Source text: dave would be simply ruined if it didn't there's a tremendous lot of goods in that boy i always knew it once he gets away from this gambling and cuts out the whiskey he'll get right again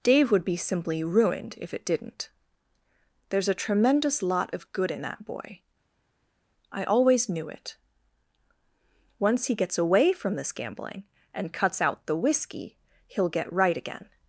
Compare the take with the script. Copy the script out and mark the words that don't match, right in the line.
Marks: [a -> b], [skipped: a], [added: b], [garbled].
dave would be simply ruined if it didn't there's a tremendous lot of [goods -> good] in that boy i always knew it once he gets away from this gambling and cuts out the whiskey he'll get right again